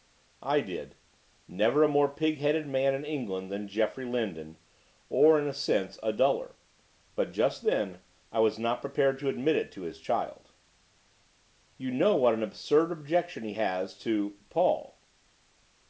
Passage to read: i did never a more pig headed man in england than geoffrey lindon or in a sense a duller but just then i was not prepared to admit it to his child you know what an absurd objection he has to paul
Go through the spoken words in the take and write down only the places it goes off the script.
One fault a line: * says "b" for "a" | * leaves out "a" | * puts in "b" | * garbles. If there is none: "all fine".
all fine